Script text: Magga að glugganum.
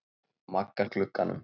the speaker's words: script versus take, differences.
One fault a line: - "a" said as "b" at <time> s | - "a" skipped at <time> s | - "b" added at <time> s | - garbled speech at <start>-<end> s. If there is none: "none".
none